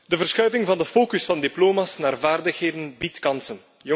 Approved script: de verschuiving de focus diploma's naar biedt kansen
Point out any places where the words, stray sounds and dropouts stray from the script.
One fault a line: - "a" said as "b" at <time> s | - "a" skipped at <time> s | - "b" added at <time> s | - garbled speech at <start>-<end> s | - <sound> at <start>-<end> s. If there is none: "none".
- "van" added at 0.7 s
- "van" added at 1.2 s
- "vaardigheden" added at 2.2 s